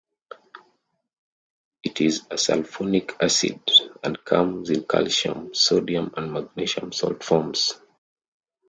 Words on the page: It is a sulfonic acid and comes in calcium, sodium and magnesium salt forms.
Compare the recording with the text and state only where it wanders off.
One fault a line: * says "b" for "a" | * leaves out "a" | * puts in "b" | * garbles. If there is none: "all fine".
all fine